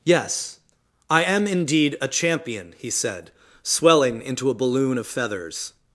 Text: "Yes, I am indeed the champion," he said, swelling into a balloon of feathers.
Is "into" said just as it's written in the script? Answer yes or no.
yes